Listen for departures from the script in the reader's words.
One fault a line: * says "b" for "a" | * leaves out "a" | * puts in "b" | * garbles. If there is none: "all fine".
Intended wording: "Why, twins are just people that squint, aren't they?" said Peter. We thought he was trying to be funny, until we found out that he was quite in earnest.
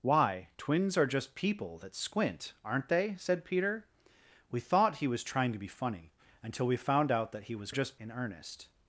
* says "just" for "quite"